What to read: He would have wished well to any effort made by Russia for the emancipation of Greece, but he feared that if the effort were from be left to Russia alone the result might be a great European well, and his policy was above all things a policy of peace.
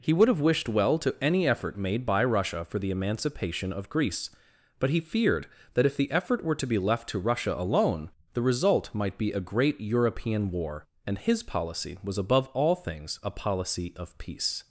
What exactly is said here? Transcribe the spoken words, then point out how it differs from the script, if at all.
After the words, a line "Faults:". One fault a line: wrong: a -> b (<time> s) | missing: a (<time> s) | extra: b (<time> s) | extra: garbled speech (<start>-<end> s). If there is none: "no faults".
He would have wished well to any effort made by Russia for the emancipation of Greece, but he feared that if the effort were to be left to Russia alone the result might be a great European war, and his policy was above all things a policy of peace.
Faults:
wrong: from -> to (6.5 s)
wrong: well -> war (10.5 s)